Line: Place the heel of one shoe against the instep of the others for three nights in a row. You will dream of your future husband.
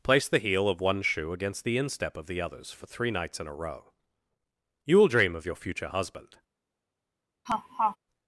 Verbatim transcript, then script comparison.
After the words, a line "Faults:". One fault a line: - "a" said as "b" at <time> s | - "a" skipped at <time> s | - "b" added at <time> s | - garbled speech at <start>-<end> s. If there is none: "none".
Place the heel of one shoe against the instep of the others for three nights in a row. You will dream of your future husband.
Faults:
none